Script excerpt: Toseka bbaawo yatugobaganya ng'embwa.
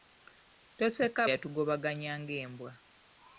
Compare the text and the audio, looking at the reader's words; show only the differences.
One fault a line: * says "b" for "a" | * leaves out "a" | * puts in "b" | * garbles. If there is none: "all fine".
* leaves out "bbaawo"